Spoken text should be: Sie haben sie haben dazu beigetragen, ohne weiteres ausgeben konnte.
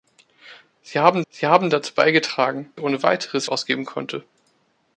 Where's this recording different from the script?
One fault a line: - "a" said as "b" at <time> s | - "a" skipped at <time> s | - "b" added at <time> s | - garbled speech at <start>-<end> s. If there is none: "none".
none